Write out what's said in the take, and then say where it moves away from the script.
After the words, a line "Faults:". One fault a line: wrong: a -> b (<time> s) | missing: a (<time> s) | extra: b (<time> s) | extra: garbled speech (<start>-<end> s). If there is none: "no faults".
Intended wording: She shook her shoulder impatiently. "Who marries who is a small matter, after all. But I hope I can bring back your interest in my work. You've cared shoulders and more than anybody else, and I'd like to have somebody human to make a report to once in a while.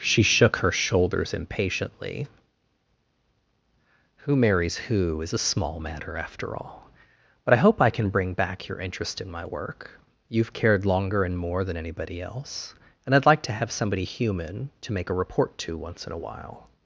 She shook her shoulders impatiently. "Who marries who is a small matter, after all. But I hope I can bring back your interest in my work. You've cared longer and more than anybody else, and I'd like to have somebody human to make a report to once in a while.
Faults:
wrong: shoulder -> shoulders (0.7 s)
wrong: shoulders -> longer (10.9 s)